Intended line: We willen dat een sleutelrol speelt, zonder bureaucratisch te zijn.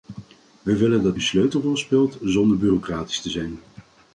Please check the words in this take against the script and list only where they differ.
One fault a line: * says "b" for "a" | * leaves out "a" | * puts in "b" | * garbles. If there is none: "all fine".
all fine